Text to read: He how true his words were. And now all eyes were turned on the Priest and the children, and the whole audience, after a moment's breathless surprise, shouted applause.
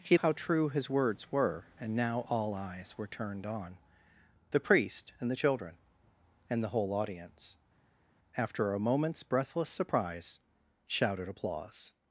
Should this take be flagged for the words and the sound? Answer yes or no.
no